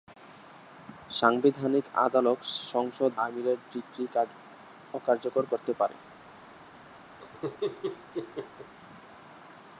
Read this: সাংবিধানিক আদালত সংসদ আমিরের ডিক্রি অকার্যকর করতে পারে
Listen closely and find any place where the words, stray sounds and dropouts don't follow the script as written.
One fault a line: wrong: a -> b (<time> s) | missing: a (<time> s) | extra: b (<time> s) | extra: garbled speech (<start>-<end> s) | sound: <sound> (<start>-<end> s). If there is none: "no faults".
sound: laugh (7.2-8.7 s)